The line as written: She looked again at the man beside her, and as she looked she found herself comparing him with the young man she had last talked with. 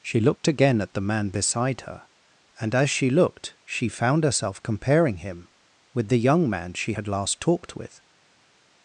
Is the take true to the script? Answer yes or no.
yes